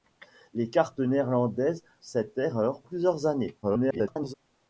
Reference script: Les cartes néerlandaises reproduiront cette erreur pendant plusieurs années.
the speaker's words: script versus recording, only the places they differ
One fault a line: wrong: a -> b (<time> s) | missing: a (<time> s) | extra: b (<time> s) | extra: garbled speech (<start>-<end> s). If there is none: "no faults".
missing: reproduiront (1.8 s)
missing: pendant (2.8 s)
extra: garbled speech (3.6-4.3 s)